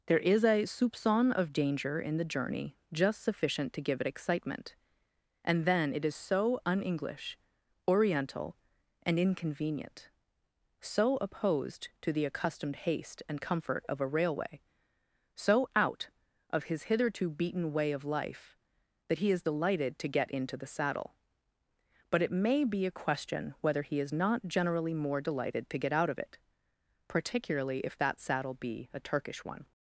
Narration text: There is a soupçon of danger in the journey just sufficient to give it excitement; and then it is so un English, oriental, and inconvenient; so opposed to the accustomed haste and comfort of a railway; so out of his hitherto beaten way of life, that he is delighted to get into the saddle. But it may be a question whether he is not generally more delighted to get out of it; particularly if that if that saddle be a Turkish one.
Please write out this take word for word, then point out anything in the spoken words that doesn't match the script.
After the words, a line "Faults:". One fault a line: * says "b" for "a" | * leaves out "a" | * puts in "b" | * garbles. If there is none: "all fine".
There is a soupçon of danger in the journey just sufficient to give it excitement; and then it is so un English, oriental, and inconvenient; so opposed to the accustomed haste and comfort of a railway; so out of his hitherto beaten way of life, that he is delighted to get into the saddle. But it may be a question whether he is not generally more delighted to get out of it; particularly if that saddle be a Turkish one.
Faults:
* leaves out "if that"